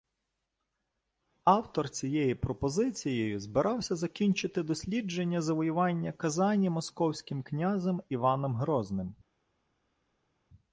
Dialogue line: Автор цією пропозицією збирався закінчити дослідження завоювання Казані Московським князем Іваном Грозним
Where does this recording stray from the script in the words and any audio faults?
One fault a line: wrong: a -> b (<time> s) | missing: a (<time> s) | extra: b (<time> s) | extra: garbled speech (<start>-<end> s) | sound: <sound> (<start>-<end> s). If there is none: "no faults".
no faults